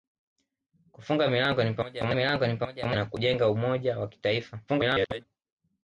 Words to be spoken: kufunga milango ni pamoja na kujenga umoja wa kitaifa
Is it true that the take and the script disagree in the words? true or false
true